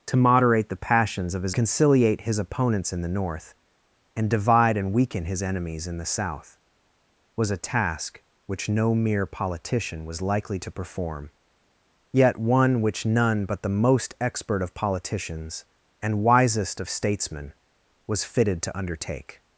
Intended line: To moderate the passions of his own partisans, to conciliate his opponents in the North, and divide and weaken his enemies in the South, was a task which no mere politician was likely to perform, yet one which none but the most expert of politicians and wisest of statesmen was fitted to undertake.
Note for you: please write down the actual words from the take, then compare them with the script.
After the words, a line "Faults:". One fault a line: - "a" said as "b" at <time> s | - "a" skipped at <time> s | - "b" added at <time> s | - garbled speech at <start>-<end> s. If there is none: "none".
To moderate the passions of his conciliate his opponents in the North, and divide and weaken his enemies in the South, was a task which no mere politician was likely to perform, yet one which none but the most expert of politicians and wisest of statesmen was fitted to undertake.
Faults:
- "own partisans to" skipped at 1.6 s